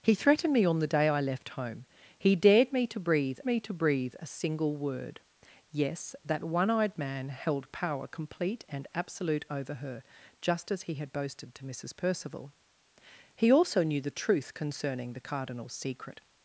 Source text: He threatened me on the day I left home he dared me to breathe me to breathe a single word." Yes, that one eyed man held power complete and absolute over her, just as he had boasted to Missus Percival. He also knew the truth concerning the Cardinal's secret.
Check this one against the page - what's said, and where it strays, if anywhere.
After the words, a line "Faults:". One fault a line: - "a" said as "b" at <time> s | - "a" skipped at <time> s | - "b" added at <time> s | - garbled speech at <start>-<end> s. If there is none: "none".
He threatened me on the day I left home he dared me to breathe me to breathe a single word." Yes, that one eyed man held power complete and absolute over her, just as he had boasted to Missus Percival. He also knew the truth concerning the Cardinal's secret.
Faults:
none